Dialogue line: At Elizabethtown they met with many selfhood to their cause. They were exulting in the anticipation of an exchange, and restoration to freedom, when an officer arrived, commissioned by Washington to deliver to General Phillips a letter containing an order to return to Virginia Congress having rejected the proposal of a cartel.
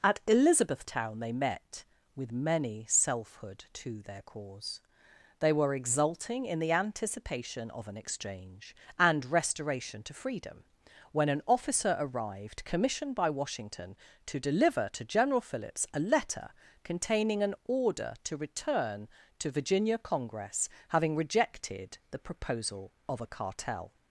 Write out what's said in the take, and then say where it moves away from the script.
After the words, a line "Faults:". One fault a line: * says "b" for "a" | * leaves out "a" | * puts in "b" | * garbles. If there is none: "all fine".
At Elizabethtown they met with many selfhood to their cause. They were exulting in the anticipation of an exchange, and restoration to freedom, when an officer arrived, commissioned by Washington to deliver to General Phillips a letter containing an order to return to Virginia Congress having rejected the proposal of a cartel.
Faults:
all fine